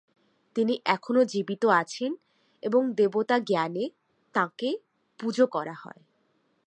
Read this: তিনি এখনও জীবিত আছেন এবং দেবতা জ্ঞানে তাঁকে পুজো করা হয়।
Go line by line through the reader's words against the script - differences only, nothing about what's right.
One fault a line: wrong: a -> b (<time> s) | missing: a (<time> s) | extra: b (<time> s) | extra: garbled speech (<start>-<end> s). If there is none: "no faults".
no faults